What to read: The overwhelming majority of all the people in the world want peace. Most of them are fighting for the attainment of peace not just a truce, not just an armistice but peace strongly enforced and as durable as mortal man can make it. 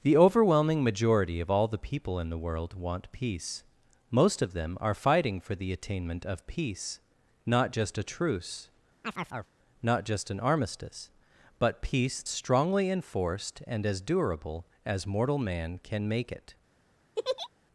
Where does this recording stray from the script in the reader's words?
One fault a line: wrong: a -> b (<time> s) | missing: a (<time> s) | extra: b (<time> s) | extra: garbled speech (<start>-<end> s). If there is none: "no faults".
no faults